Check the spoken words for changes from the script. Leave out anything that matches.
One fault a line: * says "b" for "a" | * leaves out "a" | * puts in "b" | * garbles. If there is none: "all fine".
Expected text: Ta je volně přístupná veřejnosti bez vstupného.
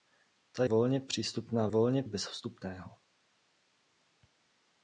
* leaves out "je"
* says "volně" for "veřejnosti"